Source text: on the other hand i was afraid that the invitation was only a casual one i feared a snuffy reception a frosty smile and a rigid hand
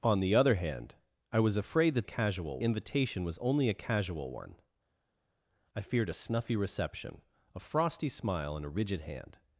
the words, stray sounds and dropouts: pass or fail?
fail